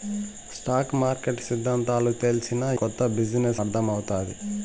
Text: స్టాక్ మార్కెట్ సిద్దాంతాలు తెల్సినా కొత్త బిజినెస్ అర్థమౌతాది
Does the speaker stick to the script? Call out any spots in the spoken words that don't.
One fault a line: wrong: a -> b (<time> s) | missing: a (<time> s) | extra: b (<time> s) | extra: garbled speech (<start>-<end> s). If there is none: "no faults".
no faults